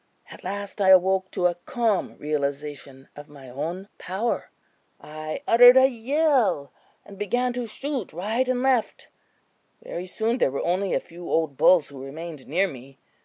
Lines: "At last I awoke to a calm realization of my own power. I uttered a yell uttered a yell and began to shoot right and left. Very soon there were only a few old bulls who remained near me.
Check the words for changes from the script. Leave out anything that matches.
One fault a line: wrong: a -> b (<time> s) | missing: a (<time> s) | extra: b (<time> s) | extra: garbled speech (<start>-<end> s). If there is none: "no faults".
missing: uttered a yell (6.7 s)